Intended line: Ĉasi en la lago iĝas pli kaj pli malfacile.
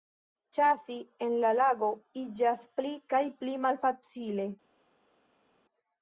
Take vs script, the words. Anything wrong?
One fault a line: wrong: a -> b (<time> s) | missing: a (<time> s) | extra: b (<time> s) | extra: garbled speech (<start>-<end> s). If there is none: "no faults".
no faults